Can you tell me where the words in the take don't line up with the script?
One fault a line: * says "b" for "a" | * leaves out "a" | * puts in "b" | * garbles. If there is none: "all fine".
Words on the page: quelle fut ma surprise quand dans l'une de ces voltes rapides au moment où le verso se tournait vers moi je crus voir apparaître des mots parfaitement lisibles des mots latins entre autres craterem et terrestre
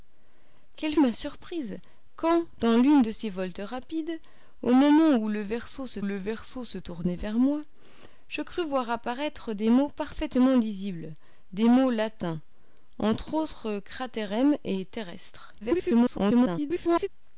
* leaves out "fut"
* puts in "le verso se"
* garbles